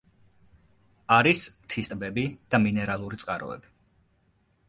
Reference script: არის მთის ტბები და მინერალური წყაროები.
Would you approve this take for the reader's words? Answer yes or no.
yes